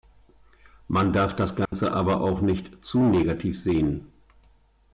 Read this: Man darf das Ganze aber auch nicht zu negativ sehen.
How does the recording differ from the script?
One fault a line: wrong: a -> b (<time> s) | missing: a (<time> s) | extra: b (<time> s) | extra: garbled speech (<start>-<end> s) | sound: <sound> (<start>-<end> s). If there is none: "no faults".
sound: dropout (1.7-1.7 s)